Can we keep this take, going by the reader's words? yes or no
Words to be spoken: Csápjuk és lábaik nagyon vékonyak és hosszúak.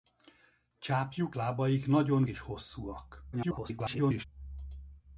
no